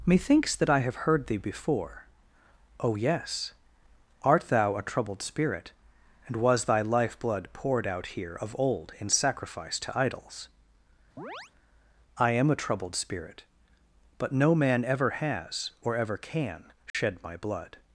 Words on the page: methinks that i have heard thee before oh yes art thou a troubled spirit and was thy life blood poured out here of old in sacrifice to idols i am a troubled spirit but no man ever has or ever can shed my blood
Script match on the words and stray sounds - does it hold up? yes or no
no